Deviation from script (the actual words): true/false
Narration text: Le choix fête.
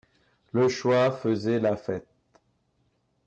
true